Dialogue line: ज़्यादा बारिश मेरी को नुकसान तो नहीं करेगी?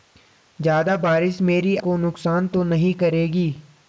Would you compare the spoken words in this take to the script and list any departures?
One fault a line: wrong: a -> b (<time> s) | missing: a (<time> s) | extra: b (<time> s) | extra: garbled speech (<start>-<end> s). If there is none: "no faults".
no faults